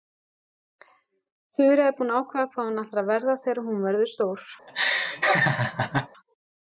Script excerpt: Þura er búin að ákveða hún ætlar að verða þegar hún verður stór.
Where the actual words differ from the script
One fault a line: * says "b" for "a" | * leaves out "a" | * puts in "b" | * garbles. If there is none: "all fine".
* puts in "hvað"